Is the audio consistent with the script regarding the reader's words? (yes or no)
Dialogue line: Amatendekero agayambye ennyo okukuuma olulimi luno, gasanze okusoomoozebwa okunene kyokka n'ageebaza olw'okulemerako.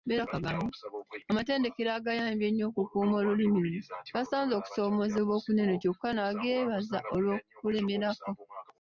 yes